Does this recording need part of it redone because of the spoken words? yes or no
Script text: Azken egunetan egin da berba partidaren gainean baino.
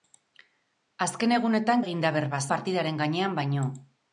no